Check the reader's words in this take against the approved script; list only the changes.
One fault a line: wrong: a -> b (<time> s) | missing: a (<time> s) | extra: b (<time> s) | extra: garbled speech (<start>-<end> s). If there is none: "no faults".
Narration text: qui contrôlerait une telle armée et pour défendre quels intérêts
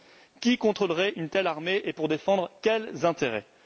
no faults